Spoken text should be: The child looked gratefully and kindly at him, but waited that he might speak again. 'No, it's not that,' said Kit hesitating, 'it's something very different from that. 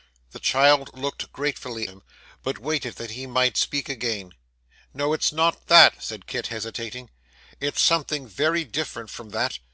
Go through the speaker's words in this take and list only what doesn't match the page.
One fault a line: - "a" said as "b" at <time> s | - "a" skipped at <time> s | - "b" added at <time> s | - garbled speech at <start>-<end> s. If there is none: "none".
- "and kindly at" skipped at 1.9 s